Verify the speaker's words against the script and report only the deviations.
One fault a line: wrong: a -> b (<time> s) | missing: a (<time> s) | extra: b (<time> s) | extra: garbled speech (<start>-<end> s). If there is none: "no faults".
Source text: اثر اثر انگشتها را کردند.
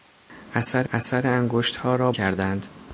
no faults